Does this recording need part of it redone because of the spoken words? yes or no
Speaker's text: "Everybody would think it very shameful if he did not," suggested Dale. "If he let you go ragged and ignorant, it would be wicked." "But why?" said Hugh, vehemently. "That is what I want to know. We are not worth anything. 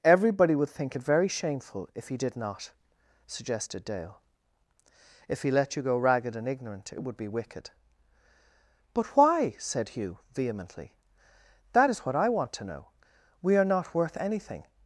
no